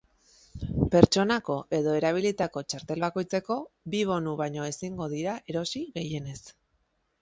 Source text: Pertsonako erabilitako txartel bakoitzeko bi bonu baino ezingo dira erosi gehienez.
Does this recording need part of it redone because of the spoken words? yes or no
yes